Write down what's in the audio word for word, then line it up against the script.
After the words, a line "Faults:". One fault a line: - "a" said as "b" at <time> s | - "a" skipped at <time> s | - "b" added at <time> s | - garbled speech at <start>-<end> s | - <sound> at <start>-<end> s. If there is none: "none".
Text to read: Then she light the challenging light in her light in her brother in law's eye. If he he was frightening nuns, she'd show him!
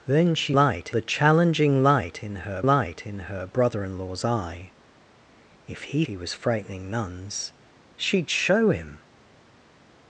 Then she light the challenging light in her light in her brother in law's eye. If he he was frightening nuns, she'd show him!
Faults:
none